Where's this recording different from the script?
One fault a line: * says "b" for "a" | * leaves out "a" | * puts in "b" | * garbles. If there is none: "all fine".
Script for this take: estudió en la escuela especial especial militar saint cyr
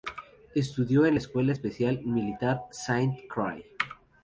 * leaves out "especial"